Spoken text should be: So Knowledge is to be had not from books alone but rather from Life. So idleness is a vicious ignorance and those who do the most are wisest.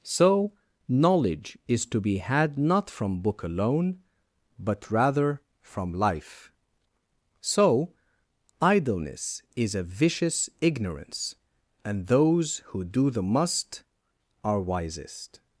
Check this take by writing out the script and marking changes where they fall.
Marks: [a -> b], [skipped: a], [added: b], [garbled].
So Knowledge is to be had not from [books -> book] alone but rather from Life. So idleness is a vicious ignorance and those who do the [most -> must] are wisest.